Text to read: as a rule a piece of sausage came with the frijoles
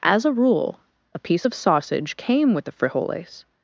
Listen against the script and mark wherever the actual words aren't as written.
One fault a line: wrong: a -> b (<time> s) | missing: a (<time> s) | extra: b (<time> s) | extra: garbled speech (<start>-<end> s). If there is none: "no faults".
no faults